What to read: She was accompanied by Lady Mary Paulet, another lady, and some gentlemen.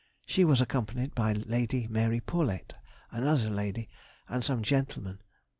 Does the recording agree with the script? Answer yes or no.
yes